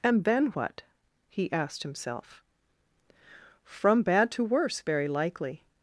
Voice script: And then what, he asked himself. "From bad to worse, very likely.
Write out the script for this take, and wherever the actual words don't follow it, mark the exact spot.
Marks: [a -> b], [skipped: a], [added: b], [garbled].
And then what, he asked himself. "From bad to worse, very likely.